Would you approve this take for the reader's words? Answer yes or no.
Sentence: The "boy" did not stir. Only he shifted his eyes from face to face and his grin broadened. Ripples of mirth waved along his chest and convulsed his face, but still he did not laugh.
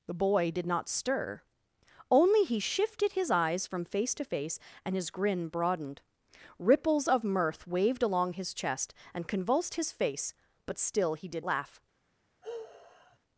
no